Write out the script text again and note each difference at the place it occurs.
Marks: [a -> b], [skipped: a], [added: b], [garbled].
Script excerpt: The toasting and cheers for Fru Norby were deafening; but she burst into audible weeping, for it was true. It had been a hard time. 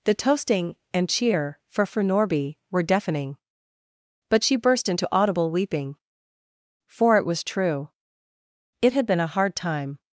The toasting and [cheers -> cheer] for Fru Norby were deafening; but she burst into audible weeping, for it was true. It had been a hard time.